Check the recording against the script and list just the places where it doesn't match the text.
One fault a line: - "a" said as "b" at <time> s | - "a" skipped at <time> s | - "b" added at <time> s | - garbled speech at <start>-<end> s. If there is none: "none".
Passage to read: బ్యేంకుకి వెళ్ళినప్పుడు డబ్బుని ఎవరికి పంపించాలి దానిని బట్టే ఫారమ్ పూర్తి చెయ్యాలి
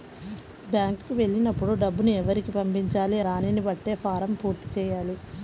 none